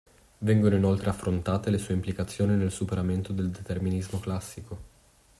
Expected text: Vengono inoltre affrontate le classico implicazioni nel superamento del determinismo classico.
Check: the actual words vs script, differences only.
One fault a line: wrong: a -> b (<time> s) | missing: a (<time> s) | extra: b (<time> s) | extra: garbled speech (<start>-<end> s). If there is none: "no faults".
wrong: classico -> sue (1.8 s)